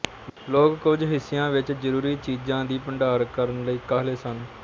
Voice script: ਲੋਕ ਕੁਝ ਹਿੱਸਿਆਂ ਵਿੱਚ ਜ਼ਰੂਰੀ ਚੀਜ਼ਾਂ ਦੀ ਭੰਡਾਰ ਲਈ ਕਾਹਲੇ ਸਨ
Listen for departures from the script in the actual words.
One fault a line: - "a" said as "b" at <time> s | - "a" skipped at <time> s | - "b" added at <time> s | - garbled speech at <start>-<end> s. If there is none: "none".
- "ਕਰਨ" added at 3.3 s